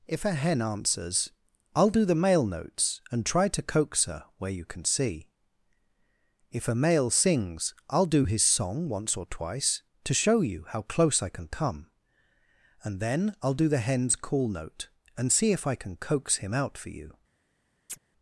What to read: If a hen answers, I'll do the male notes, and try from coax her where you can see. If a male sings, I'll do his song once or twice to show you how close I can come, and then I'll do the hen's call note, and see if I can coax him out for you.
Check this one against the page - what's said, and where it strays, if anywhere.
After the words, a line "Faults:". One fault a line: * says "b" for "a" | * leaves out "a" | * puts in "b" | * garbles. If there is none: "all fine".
If a hen answers, I'll do the male notes, and try to coax her where you can see. If a male sings, I'll do his song once or twice to show you how close I can come, and then I'll do the hen's call note, and see if I can coax him out for you.
Faults:
* says "to" for "from"